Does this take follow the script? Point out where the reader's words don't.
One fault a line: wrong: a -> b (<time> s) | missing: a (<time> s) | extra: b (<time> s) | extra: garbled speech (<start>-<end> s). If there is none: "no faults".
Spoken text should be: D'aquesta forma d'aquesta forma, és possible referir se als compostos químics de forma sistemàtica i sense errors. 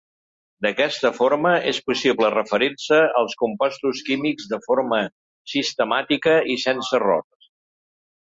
missing: d'aquesta forma (1.5 s)